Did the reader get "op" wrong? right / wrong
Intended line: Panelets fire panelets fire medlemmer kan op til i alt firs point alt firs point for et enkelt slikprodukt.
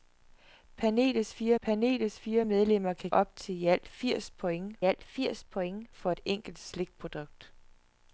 right